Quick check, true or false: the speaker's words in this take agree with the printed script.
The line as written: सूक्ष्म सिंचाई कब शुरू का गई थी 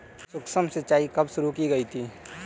false